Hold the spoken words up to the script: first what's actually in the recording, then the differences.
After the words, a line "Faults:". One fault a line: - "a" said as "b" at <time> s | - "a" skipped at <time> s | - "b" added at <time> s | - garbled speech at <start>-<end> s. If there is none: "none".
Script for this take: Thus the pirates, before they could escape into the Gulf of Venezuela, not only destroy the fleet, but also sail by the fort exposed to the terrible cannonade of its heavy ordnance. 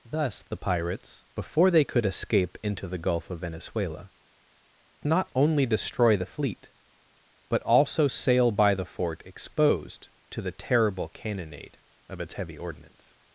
Thus the pirates, before they could escape into the Gulf of Venezuela, not only destroy the fleet, but also sail by the fort exposed to the terrible cannonade of its heavy ordnance.
Faults:
none